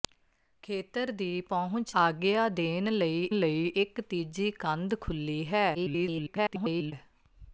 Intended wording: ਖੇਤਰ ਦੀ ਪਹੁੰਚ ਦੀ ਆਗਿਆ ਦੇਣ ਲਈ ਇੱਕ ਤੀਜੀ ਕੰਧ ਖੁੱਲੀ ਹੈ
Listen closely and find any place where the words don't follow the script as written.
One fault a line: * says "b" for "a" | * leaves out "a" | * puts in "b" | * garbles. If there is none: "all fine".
* leaves out "ਦੀ"
* puts in "ਲਈ"
* garbles